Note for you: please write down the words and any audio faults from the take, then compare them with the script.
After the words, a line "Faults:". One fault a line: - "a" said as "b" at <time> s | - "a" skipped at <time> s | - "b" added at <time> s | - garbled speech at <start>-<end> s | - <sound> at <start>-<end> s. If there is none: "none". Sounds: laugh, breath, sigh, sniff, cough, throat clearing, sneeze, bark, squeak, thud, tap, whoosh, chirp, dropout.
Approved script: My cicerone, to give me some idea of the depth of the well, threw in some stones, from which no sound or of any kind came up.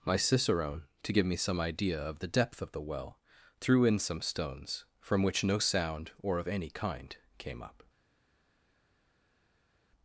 My cicerone, to give me some idea of the depth of the well, threw in some stones, from which no sound or of any kind came up.
Faults:
none